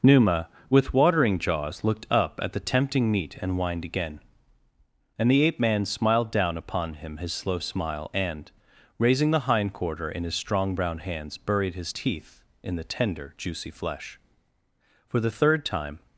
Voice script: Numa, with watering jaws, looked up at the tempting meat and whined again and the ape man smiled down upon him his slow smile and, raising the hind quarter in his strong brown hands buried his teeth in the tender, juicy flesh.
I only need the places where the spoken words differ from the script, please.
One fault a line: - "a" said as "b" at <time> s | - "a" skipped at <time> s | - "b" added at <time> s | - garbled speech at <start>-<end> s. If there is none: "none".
- "For the third time" added at 15.1 s